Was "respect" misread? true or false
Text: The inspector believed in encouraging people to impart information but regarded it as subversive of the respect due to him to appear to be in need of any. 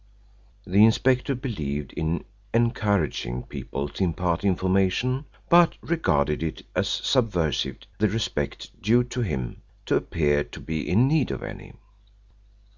false